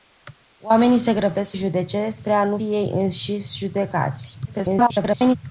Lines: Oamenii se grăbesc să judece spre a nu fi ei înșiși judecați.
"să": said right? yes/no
no